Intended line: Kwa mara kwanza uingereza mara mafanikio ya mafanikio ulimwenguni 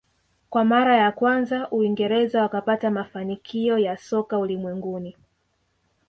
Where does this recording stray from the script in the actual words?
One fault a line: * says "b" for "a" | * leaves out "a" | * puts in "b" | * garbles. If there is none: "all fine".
* puts in "ya"
* says "wakapata" for "mara"
* says "soka" for "mafanikio"